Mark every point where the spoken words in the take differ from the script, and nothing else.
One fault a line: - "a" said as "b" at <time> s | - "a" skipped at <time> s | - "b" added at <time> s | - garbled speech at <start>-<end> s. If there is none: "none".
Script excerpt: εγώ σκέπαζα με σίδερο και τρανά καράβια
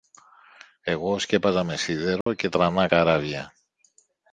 none